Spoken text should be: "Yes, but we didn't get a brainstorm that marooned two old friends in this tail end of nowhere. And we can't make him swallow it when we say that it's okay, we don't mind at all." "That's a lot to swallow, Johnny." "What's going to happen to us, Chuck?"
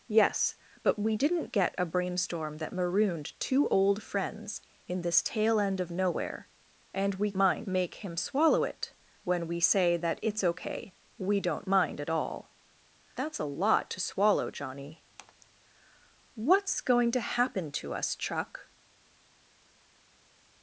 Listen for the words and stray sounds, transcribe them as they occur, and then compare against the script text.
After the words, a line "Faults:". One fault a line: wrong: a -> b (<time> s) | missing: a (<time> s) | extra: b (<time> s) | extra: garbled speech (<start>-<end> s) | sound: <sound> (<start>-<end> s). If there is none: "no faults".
"Yes, but we didn't get a brainstorm that marooned two old friends in this tail end of nowhere. And we mind make him swallow it when we say that it's okay, we don't mind at all." "That's a lot to swallow, Johnny." "What's going to happen to us, Chuck?"
Faults:
wrong: can't -> mind (7.4 s)